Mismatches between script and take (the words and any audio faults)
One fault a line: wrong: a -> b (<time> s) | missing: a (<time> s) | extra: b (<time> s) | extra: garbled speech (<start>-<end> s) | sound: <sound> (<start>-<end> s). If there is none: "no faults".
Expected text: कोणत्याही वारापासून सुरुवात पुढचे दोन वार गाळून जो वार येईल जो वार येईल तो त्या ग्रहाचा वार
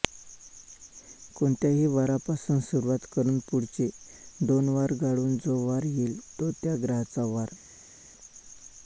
extra: करून (3.1 s)
missing: जो वार येईल (6.2 s)